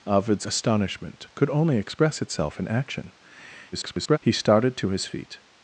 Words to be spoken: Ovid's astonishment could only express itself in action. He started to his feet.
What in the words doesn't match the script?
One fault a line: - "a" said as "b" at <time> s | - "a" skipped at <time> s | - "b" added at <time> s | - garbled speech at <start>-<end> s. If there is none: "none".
- garbled speech at 3.7-4.2 s